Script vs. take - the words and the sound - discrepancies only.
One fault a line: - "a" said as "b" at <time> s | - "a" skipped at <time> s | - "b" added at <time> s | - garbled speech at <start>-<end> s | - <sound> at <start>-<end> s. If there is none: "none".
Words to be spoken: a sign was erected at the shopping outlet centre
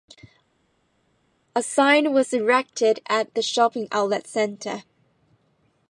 none